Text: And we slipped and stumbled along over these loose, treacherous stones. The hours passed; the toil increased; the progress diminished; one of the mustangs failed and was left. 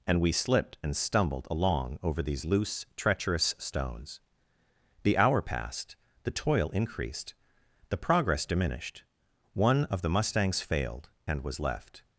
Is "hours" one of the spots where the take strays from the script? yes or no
yes